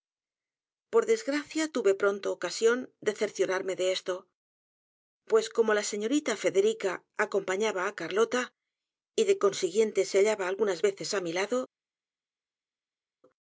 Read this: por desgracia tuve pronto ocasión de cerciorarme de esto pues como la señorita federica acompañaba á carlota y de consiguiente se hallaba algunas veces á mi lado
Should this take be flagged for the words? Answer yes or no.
no